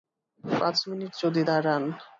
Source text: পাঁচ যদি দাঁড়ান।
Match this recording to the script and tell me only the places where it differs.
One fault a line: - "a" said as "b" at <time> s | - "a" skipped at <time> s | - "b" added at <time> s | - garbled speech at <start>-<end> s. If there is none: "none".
- "মিনিট" added at 0.9 s